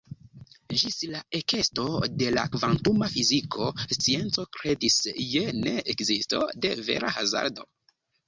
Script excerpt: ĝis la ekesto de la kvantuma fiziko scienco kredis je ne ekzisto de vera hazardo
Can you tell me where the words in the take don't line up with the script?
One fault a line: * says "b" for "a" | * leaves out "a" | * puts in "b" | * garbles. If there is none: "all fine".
all fine